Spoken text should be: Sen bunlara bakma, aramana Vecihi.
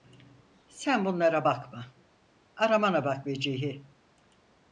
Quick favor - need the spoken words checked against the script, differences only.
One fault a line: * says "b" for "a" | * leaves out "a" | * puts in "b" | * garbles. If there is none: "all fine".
* puts in "bak"